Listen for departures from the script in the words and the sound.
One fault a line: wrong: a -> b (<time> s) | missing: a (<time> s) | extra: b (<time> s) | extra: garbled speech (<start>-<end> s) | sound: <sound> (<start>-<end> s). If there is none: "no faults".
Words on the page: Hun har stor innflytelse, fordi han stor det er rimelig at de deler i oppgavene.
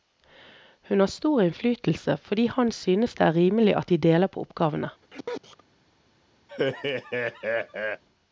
wrong: stor -> synes (2.7 s)
wrong: i -> på (4.3 s)
sound: sneeze (5.0-5.6 s)
sound: laugh (6.5-8.0 s)